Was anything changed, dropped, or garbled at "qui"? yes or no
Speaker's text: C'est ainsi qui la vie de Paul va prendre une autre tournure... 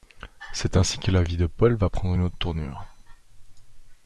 yes